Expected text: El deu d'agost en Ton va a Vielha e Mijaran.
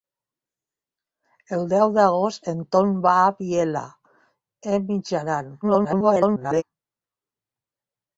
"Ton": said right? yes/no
yes